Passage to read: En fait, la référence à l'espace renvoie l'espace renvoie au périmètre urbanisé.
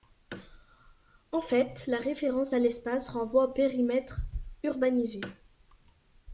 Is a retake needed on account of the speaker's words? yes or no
yes